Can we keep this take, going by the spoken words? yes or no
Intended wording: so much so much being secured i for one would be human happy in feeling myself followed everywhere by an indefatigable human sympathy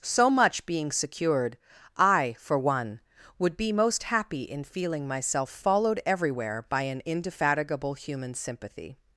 no